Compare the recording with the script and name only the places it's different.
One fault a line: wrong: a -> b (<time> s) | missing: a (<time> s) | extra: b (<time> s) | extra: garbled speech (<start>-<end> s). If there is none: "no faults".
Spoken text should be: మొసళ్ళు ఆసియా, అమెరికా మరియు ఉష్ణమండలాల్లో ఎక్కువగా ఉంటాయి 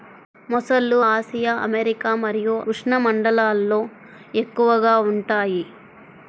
no faults